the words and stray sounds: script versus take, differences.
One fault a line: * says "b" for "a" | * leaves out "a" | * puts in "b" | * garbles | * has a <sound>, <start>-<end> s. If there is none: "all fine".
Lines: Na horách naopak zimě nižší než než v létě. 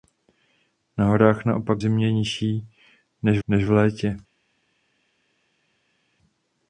all fine